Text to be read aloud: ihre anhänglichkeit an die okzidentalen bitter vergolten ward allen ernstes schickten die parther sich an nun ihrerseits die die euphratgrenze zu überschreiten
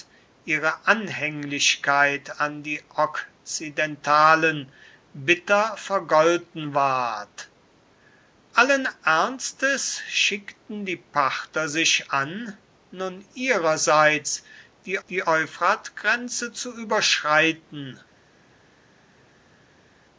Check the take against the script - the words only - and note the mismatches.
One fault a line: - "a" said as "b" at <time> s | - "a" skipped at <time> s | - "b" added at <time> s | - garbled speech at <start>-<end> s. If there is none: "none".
none